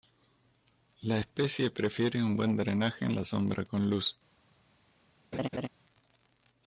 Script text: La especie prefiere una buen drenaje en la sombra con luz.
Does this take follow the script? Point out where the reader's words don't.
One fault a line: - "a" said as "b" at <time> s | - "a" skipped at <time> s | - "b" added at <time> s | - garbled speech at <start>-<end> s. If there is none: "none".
- "una" said as "un" at 2.2 s